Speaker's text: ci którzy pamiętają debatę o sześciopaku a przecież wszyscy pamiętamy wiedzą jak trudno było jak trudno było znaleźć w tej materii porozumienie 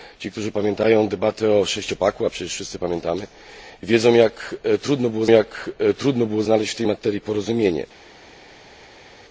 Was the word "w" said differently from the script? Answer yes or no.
no